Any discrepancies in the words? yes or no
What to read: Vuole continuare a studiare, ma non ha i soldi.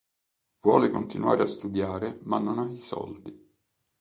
no